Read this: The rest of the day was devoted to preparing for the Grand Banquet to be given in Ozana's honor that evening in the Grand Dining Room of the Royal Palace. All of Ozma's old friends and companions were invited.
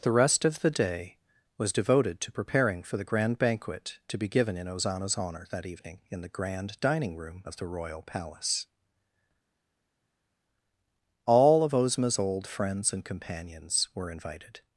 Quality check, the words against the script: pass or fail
pass